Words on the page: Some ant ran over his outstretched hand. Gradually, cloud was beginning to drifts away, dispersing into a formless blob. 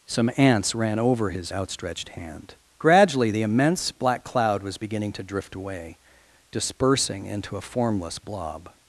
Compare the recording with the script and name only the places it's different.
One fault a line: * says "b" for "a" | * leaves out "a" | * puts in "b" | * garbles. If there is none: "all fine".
* says "ants" for "ant"
* puts in "the immense black"
* says "drift" for "drifts"